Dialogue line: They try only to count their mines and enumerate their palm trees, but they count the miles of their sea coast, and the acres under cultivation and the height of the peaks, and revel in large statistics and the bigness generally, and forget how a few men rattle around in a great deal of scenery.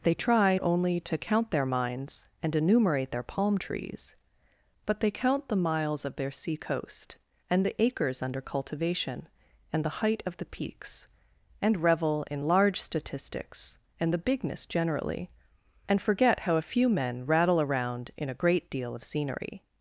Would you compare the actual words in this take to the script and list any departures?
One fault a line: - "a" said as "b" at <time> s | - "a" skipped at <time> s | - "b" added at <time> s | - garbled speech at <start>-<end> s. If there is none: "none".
none